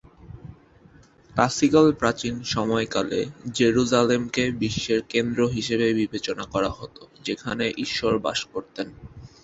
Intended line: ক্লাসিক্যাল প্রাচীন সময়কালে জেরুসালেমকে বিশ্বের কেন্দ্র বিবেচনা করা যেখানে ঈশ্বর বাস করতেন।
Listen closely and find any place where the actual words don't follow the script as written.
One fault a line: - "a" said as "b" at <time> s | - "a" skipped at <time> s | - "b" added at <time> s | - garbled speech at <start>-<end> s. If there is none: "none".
- "হিসেবে" added at 5.5 s
- "হত" added at 6.7 s